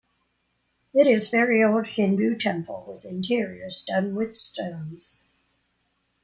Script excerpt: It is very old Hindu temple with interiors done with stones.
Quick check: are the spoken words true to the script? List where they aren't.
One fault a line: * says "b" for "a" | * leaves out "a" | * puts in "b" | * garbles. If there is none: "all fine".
all fine